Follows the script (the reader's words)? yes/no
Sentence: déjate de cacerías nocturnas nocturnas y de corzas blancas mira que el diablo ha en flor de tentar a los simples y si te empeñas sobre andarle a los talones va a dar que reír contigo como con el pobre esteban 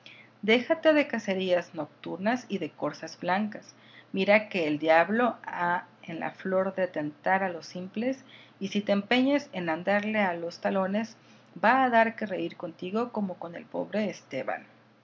no